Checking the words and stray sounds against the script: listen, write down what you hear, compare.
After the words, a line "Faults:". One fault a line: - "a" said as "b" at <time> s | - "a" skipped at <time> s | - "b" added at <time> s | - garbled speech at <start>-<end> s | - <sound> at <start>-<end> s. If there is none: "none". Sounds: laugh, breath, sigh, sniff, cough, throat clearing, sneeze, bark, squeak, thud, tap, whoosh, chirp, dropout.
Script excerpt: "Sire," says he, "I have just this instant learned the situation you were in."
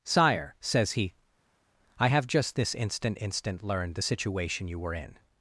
"Sire," says he, "I have just this instant instant learned the situation you were in."
Faults:
- "instant" added at 3.2 s